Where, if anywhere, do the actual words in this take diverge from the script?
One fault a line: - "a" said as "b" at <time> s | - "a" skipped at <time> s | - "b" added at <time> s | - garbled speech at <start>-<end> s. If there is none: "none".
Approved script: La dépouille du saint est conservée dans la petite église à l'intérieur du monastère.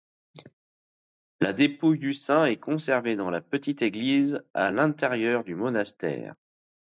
none